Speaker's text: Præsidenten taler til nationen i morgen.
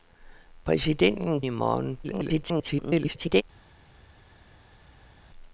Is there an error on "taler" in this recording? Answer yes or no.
yes